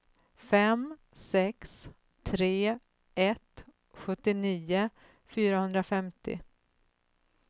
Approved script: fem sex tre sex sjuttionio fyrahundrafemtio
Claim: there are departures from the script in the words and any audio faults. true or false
true